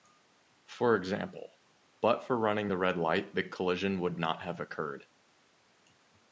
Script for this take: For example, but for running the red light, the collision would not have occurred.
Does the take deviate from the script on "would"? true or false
false